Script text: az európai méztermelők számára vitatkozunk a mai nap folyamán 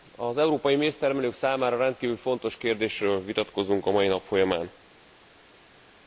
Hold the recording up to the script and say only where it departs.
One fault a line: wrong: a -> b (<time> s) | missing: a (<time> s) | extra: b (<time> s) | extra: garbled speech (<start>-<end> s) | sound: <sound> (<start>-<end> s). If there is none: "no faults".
extra: rendkívül fontos kérdésről (1.8 s)